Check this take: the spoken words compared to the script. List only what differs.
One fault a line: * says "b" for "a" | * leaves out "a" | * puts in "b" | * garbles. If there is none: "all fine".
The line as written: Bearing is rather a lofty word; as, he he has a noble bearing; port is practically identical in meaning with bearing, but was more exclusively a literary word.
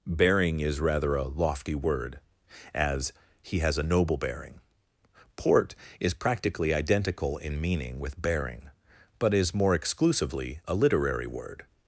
* leaves out "he"
* says "is" for "was"